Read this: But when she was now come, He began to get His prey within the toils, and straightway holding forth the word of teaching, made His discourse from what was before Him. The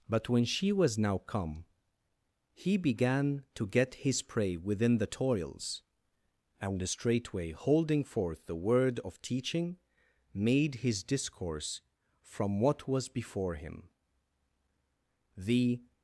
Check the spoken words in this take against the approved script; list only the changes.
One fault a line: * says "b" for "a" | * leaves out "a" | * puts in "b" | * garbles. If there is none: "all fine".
all fine